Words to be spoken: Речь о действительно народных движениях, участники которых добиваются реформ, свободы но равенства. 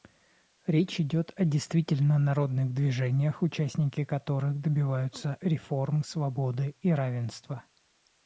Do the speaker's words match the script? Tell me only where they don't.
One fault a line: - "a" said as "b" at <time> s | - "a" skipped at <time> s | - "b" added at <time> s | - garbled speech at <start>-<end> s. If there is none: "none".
- "идет" added at 1.0 s
- "но" said as "и" at 6.8 s